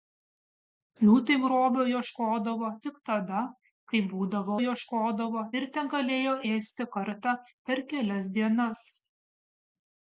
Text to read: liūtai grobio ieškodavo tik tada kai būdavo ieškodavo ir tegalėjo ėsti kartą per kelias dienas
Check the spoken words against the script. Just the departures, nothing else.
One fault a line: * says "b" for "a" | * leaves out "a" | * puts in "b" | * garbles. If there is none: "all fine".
all fine